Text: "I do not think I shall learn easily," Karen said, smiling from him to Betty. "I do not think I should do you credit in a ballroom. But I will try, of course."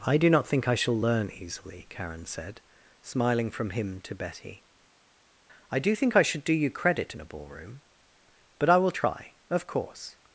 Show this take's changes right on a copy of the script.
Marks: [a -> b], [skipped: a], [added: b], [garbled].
"I do not think I shall learn easily," Karen said, smiling from him to Betty. "I do [skipped: not] think I should do you credit in a ballroom. But I will try, of course."